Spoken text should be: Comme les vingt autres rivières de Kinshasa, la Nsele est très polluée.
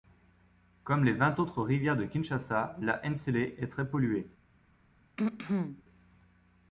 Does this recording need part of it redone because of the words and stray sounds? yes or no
yes